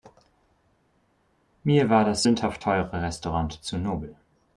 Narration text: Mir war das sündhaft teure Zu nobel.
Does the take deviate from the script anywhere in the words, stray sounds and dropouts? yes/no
yes